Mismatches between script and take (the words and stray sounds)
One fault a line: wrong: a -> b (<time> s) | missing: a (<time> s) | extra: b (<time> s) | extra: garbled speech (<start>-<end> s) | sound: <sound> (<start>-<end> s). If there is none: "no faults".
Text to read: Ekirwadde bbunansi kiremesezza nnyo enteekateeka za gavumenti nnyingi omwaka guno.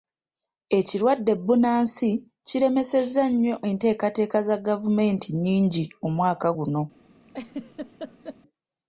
sound: laugh (7.3-8.4 s)